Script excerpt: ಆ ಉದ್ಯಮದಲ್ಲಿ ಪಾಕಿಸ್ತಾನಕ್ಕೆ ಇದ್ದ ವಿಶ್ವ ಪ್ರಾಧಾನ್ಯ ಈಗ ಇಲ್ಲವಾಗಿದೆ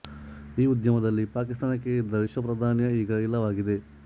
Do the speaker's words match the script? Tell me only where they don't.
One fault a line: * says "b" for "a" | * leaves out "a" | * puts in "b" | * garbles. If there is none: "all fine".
* says "ಈ" for "ಆ"